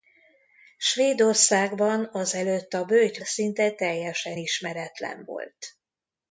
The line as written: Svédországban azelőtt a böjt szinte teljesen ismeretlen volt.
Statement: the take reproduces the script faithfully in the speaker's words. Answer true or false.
true